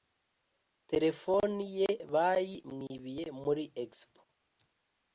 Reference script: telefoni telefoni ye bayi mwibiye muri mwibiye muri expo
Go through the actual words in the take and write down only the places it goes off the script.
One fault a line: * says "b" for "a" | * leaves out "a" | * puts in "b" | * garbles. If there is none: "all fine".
* leaves out "telefoni"
* leaves out "mwibiye muri"